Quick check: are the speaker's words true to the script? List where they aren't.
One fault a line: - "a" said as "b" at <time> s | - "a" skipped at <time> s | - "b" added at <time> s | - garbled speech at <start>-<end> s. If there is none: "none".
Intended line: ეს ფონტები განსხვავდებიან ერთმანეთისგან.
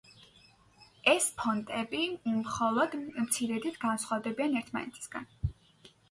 - "მხოლოდ მცირედით" added at 2.4 s